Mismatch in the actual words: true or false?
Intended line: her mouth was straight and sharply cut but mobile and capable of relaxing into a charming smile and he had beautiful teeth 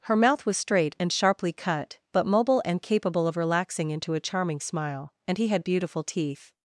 false